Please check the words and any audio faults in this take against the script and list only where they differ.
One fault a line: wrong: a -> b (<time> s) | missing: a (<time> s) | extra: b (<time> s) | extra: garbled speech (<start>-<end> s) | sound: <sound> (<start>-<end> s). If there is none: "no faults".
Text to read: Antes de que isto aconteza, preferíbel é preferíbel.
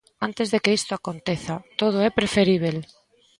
wrong: preferíbel -> todo (1.8 s)